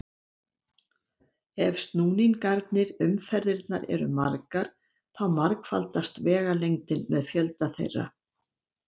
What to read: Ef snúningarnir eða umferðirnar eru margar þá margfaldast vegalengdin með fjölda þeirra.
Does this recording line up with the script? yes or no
no